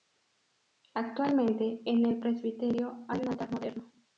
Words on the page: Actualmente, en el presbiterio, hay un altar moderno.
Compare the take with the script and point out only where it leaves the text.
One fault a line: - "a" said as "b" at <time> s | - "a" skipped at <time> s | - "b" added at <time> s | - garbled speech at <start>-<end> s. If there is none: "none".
none